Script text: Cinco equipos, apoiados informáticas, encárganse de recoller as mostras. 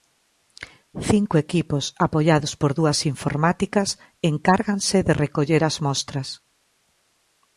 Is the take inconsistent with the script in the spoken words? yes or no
yes